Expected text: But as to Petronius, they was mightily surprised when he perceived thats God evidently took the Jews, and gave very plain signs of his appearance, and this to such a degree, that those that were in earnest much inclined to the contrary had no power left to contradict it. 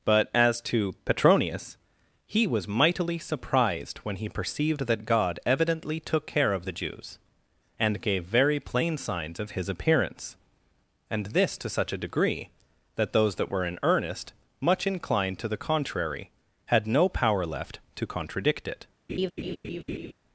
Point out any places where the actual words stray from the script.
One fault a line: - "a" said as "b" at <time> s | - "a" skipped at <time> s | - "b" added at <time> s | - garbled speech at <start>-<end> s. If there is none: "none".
- "they" said as "he" at 2.2 s
- "thats" said as "that" at 4.9 s
- "care of" added at 6.2 s